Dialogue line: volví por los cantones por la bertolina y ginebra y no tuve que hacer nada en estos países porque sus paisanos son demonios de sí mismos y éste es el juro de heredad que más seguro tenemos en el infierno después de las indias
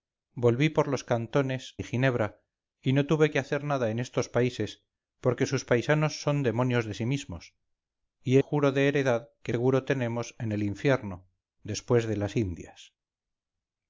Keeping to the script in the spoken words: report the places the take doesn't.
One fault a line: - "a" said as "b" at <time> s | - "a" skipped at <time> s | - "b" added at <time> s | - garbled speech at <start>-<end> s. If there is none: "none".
- "por la bertolina" skipped at 1.8 s
- "éste es el" skipped at 8.4 s
- "más" skipped at 9.5 s